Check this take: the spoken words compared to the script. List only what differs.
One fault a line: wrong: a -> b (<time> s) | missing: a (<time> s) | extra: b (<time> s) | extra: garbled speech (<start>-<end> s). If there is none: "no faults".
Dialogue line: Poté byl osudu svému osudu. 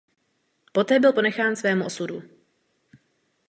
wrong: osudu -> ponechán (1.1 s)